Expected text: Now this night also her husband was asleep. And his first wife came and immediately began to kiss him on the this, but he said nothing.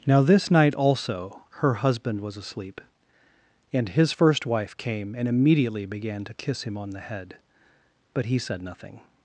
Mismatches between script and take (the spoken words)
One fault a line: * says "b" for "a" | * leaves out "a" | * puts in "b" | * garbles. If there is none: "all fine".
* says "head" for "this"